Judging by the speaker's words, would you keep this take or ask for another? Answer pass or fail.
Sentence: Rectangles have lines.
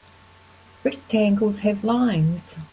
pass